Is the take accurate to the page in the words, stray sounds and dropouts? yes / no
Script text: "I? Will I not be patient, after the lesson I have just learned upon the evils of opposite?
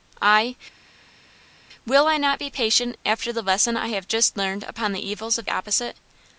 yes